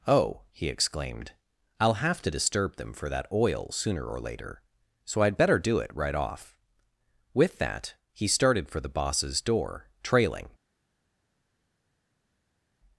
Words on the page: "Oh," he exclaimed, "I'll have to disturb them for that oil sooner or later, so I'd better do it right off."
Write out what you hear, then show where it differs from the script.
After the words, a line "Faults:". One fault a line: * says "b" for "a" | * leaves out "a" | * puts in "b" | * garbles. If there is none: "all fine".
"Oh," he exclaimed, "I'll have to disturb them for that oil sooner or later, so I'd better do it right off." With that he started for the boss's door, trailing
Faults:
* puts in "With that he started for the boss's door trailing"